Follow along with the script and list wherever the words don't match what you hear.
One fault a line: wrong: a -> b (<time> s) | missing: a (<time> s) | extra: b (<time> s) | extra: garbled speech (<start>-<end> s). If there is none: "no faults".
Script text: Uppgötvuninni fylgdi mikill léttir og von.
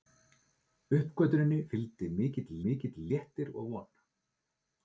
extra: mikill (2.6 s)